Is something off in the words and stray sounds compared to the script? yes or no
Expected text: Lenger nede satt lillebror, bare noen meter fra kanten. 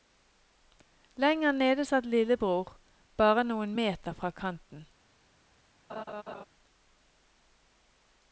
yes